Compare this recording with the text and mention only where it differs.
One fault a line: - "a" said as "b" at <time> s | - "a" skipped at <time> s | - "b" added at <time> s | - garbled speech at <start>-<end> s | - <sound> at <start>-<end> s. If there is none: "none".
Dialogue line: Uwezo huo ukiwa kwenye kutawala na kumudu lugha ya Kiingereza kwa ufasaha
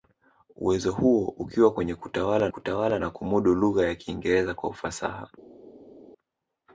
- "kutawala" added at 2.5 s